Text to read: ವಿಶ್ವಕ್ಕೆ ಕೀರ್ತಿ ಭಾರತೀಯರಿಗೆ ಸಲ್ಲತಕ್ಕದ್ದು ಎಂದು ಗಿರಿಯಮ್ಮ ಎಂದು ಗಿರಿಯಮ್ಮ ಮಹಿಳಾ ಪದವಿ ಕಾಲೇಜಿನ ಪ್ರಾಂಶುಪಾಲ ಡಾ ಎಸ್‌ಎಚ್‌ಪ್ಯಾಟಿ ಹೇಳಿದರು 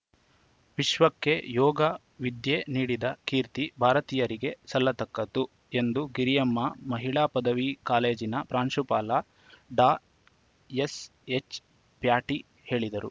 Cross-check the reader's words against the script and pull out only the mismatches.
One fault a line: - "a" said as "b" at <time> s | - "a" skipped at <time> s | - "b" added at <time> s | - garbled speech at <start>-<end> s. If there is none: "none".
- "ಯೋಗ ವಿದ್ಯೆ ನೀಡಿದ" added at 1.5 s
- "ಎಂದು ಗಿರಿಯಮ್ಮ" skipped at 6.6 s